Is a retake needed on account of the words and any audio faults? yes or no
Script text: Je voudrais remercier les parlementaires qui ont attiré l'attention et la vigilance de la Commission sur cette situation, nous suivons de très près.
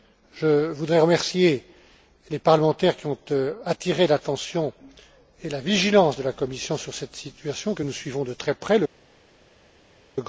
yes